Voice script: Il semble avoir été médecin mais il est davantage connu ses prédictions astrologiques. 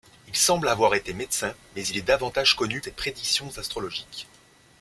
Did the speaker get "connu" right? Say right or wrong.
right